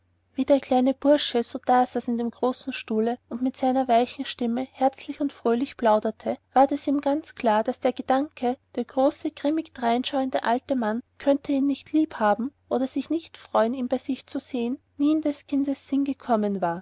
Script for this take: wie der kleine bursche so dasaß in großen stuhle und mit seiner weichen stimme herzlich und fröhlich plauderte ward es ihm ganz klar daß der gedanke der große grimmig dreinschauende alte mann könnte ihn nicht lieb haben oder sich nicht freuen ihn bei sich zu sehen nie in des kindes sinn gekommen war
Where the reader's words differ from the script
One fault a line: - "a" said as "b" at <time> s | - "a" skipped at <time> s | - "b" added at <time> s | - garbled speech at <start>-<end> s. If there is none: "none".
- "dem" added at 2.2 s